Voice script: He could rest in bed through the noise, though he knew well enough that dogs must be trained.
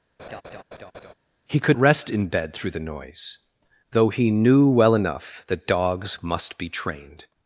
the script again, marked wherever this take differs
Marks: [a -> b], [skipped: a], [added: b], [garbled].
He could rest in bed through the noise, though he knew well enough that dogs must be trained.